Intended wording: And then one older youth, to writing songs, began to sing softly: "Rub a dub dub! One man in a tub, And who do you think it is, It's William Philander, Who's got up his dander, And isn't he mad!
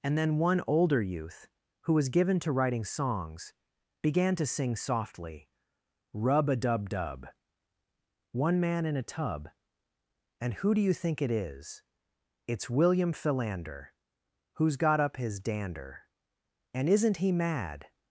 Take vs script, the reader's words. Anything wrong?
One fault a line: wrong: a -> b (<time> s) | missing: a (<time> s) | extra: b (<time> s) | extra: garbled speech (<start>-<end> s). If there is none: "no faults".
extra: who was given (1.8 s)